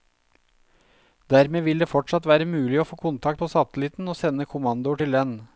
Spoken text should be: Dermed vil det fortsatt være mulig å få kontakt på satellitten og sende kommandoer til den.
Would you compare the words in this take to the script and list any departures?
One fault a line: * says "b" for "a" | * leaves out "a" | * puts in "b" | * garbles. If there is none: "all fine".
all fine